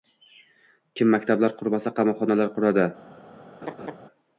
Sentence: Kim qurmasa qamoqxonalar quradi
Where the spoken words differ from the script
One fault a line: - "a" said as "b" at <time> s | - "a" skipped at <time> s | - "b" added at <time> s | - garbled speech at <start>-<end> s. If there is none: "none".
- "maktablar" added at 1.1 s